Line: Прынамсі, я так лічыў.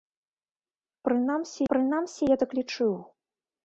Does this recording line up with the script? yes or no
no